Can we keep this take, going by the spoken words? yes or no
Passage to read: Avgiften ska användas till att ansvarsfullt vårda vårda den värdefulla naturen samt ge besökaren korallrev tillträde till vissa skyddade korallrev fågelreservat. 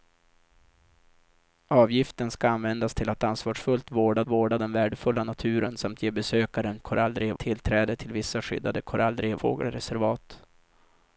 yes